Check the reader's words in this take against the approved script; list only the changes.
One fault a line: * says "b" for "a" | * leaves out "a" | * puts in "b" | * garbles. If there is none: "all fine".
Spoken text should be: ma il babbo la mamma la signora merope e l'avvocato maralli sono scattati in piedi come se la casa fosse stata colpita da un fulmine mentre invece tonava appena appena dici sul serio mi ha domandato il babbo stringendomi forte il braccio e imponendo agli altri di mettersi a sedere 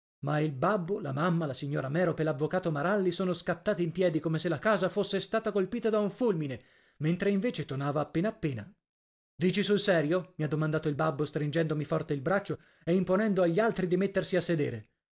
all fine